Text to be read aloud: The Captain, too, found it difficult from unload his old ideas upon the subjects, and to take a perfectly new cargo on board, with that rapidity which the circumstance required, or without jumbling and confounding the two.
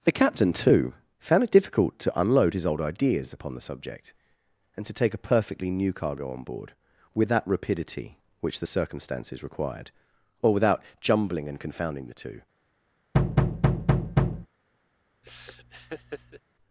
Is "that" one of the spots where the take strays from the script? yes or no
no